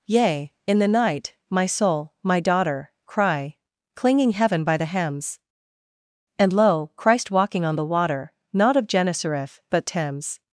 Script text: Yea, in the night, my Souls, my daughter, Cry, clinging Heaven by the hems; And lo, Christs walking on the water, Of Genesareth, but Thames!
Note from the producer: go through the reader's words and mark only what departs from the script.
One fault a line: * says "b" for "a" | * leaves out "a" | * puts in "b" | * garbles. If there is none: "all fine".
* says "Soul" for "Souls"
* says "Christ" for "Christs"
* puts in "Not"